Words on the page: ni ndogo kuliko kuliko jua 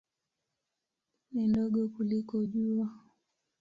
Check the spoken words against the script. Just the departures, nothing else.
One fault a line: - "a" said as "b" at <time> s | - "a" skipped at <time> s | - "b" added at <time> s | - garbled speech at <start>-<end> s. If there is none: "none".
- "kuliko" skipped at 2.5 s